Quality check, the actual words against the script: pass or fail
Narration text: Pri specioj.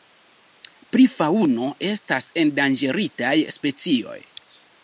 fail